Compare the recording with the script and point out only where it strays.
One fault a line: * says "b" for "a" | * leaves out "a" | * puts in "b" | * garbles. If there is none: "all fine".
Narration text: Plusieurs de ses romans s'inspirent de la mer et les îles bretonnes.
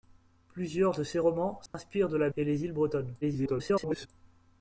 * leaves out "mer"
* garbles